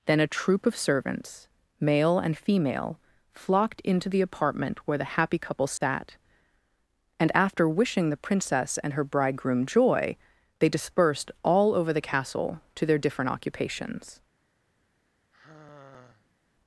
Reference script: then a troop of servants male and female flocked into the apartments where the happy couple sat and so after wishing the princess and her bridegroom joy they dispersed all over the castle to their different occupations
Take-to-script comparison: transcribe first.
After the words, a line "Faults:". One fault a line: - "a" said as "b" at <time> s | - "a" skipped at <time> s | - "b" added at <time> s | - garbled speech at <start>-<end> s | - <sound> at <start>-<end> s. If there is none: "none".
then a troop of servants male and female flocked into the apartment where the happy couple sat and after wishing the princess and her bridegroom joy they dispersed all over the castle to their different occupations
Faults:
- "apartments" said as "apartment" at 4.2 s
- dropout at 5.8-5.8 s
- "so" skipped at 7.3 s
- sigh at 15.3-16.4 s